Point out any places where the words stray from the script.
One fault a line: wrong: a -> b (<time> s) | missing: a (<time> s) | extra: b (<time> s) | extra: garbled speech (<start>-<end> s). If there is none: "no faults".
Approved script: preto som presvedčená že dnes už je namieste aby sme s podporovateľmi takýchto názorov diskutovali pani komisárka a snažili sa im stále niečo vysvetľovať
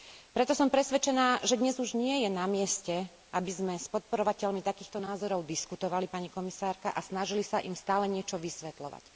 extra: nie (2.0 s)